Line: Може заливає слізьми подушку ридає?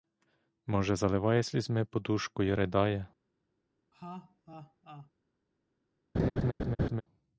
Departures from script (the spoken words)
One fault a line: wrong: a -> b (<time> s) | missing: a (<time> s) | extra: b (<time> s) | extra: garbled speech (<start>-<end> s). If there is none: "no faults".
extra: й (2.4 s)